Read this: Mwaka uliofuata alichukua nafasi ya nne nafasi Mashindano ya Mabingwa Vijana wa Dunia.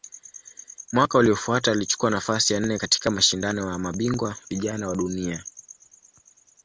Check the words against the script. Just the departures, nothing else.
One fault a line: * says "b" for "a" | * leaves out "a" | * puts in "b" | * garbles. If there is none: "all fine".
* says "katika" for "nafasi"